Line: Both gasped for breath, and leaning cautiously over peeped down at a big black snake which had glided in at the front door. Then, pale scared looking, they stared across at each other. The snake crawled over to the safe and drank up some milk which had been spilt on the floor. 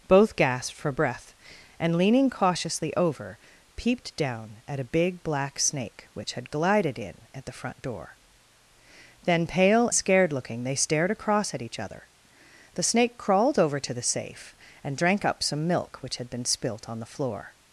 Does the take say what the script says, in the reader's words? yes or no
yes